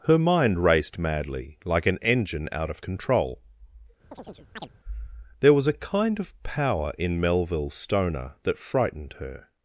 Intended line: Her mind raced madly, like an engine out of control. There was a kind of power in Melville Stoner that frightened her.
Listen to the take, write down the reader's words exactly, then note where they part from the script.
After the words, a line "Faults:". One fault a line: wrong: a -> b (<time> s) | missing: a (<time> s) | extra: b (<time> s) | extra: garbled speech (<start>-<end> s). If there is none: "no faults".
Her mind raced madly, like an engine out of control. There was a kind of power in Melville Stoner that frightened her.
Faults:
no faults